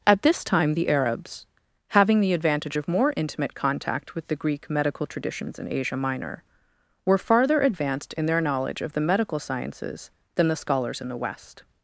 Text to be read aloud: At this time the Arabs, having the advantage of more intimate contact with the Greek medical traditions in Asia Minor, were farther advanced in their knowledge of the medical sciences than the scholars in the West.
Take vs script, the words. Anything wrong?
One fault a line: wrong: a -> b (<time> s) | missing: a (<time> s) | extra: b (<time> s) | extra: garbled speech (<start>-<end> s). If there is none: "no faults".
no faults